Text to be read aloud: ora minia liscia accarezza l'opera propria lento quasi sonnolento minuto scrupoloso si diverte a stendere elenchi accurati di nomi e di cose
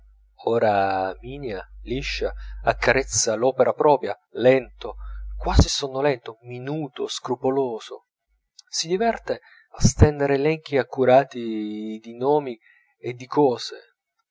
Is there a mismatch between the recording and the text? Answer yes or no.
no